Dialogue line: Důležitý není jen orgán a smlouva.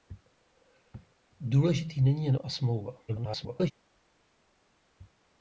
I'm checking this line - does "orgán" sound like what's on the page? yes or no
no